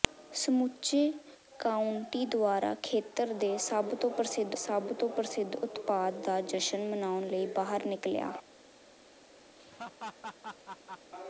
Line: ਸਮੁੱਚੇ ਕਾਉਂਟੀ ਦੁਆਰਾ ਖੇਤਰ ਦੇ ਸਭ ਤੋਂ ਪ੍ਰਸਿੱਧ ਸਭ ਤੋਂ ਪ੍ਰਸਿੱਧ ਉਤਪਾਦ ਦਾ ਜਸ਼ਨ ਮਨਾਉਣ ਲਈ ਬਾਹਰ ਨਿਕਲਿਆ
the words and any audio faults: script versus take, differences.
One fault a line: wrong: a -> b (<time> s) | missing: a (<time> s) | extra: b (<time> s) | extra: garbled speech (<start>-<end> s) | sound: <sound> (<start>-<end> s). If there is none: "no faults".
sound: laugh (9.6-11.1 s)